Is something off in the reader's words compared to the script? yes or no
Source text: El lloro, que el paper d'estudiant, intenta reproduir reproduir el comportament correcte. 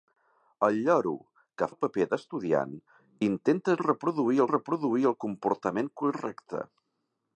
no